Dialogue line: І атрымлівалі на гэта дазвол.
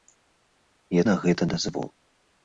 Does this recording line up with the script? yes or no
no